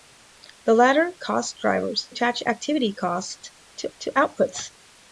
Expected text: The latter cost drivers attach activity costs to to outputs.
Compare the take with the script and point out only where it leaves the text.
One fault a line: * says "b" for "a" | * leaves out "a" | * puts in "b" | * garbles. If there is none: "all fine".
all fine